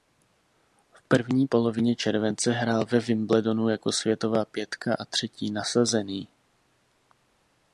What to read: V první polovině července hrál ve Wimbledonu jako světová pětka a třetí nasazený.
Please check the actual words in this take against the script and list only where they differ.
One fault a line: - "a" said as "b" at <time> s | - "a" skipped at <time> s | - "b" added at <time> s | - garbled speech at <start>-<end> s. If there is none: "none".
none